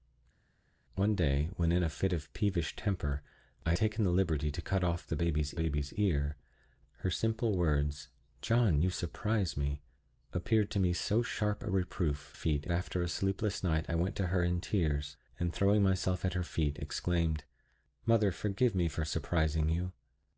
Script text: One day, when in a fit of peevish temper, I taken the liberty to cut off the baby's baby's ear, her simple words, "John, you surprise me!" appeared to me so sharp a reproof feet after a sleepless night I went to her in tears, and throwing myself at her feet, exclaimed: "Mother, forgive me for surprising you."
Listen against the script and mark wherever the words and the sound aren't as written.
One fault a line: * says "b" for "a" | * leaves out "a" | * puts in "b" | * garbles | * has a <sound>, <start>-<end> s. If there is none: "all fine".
all fine